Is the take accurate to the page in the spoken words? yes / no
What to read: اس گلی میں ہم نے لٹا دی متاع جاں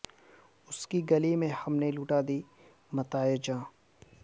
no